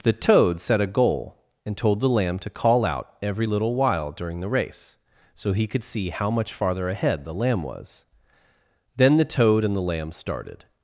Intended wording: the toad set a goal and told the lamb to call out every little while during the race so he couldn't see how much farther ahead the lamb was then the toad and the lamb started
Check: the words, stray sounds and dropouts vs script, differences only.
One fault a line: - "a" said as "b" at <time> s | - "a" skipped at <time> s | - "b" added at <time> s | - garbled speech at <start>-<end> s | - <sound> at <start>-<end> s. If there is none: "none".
- "couldn't" said as "could" at 5.7 s